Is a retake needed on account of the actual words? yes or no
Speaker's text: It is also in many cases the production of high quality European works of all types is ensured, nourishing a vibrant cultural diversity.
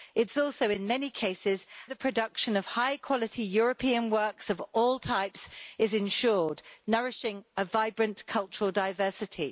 no